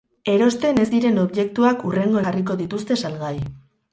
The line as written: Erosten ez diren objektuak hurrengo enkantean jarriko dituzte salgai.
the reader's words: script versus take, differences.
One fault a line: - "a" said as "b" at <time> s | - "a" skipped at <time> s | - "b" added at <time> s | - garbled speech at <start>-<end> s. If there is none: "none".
- "enkantean" skipped at 2.2 s